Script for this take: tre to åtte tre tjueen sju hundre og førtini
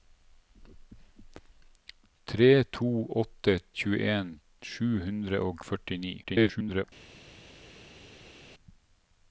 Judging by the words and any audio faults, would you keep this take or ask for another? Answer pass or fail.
fail